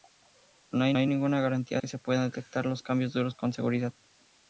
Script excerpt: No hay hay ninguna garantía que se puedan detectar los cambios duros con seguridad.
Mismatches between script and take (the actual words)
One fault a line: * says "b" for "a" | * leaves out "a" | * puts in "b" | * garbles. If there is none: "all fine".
all fine